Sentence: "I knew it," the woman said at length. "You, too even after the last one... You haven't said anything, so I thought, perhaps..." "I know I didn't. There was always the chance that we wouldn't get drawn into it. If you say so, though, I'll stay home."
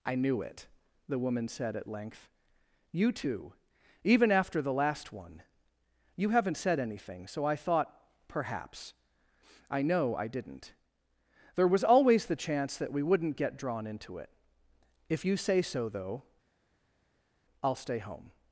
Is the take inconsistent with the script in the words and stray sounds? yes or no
no